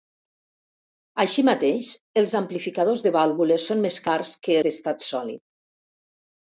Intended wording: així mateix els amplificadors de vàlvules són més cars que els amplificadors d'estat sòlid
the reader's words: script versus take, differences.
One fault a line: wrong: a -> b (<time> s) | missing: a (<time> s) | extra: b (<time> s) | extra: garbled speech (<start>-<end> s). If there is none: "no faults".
missing: els amplificadors (4.6 s)